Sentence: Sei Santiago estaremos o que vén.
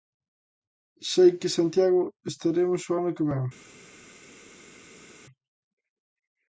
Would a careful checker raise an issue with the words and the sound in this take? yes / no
yes